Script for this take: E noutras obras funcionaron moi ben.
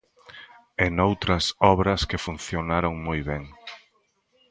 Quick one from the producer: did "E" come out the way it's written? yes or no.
yes